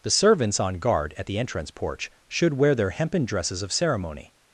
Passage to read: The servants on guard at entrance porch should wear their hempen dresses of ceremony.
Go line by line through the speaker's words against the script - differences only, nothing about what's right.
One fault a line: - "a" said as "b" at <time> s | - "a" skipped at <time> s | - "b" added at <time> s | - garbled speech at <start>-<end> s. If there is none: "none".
- "the" added at 1.3 s